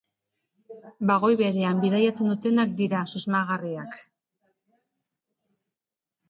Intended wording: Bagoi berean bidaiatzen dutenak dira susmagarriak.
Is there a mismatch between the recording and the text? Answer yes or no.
no